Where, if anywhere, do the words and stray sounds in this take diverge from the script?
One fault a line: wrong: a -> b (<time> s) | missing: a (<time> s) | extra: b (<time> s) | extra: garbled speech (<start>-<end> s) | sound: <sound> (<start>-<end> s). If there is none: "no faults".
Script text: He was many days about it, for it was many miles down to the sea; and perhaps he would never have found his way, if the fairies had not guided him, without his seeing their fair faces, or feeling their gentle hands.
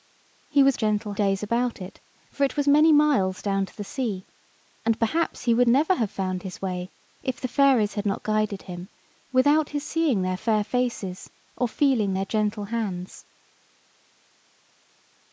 wrong: many -> gentle (0.7 s)